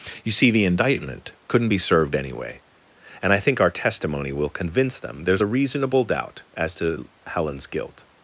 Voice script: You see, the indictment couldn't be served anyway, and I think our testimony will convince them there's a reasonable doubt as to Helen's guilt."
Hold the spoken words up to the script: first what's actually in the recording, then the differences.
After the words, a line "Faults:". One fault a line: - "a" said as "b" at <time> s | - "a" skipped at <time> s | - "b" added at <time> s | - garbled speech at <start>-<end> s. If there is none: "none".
You see, the indictment couldn't be served anyway, and I think our testimony will convince them there's a reasonable doubt as to Helen's guilt."
Faults:
none